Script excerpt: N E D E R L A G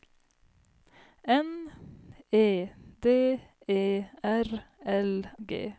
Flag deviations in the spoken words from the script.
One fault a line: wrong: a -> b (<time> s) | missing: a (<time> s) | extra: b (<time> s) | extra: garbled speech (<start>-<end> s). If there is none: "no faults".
missing: A (5.2 s)